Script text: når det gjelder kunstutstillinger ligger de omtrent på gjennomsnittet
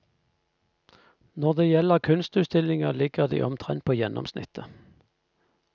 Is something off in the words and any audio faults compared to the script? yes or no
no